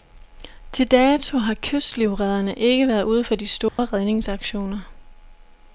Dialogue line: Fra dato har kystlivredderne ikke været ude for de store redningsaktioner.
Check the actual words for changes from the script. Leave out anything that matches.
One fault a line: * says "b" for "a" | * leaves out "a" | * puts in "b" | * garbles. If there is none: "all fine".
* says "Til" for "Fra"